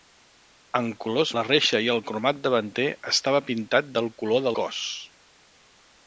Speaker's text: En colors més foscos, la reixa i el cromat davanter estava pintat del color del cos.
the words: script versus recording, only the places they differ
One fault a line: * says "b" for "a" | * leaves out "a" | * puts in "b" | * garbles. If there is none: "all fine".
* leaves out "més foscos"
* leaves out "del"